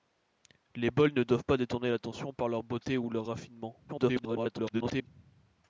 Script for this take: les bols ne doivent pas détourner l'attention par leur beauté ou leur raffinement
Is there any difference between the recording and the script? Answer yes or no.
yes